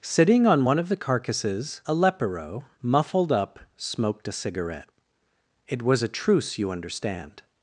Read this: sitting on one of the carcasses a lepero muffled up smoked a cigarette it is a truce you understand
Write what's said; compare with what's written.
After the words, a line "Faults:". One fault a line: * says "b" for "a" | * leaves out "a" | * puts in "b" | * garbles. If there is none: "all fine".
sitting on one of the carcasses a lepero muffled up smoked a cigarette it was a truce you understand
Faults:
* says "was" for "is"